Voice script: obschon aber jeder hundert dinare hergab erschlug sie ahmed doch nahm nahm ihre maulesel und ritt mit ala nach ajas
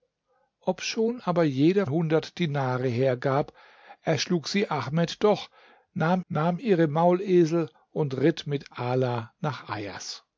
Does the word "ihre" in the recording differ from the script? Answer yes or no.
no